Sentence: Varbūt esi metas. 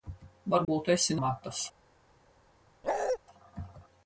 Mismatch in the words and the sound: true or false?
true